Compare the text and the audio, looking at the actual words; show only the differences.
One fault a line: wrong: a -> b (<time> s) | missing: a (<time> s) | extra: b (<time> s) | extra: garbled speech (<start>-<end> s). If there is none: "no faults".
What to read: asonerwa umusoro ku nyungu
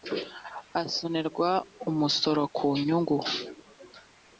no faults